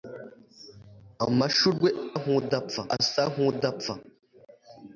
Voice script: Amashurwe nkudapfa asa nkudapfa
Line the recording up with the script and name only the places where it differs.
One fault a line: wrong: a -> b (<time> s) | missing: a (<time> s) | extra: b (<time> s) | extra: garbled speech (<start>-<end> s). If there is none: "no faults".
no faults